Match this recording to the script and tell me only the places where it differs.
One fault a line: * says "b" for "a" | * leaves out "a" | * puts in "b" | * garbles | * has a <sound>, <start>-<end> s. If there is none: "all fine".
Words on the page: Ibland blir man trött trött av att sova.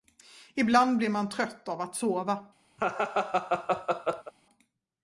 * leaves out "trött"
* has a laugh, 2.8-4.3 s